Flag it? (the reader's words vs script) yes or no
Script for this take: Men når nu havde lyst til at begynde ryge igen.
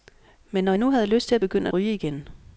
no